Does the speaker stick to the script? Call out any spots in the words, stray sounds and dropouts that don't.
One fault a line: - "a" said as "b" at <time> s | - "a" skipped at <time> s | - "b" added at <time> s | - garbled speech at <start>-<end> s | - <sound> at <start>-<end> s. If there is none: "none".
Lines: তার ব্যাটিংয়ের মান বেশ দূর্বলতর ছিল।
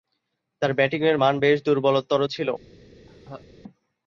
- laugh at 3.1-3.4 s